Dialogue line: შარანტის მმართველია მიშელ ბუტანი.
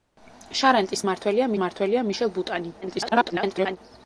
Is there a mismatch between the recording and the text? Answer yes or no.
yes